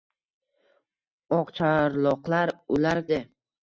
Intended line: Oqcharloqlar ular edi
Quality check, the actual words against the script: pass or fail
pass